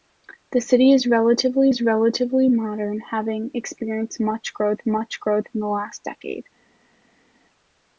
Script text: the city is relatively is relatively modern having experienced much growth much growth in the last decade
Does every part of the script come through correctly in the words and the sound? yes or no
yes